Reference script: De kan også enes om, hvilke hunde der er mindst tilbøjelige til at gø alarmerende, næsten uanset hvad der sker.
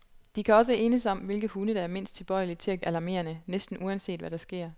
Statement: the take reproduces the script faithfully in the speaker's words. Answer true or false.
false